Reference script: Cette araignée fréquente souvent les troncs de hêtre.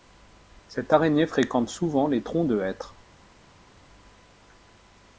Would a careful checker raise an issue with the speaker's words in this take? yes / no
no